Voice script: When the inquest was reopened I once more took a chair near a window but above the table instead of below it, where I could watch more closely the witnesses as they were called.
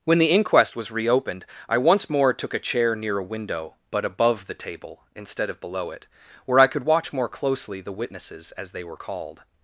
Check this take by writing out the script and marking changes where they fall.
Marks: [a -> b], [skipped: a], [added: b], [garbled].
When the inquest was reopened I once more took a chair near a window but above the table instead of below it, where I could watch more closely the witnesses as they were called.